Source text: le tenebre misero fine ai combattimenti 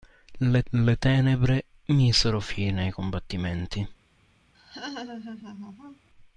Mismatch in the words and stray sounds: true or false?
true